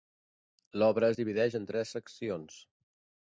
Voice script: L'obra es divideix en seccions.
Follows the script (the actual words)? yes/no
no